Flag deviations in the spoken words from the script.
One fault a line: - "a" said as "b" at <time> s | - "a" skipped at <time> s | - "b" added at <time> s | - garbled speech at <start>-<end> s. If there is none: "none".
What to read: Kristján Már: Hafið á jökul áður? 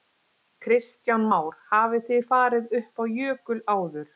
- "þið farið upp" added at 2.1 s